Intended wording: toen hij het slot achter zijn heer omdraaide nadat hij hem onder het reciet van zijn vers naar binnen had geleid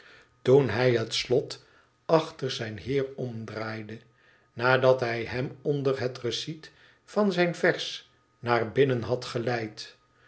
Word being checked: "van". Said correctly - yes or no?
yes